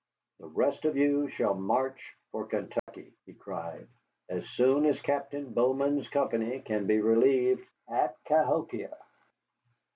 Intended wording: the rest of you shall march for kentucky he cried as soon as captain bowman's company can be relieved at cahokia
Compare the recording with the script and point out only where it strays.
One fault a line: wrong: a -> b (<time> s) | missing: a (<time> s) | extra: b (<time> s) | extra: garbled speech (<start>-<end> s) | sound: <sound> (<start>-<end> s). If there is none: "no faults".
sound: dropout (2.8-2.9 s)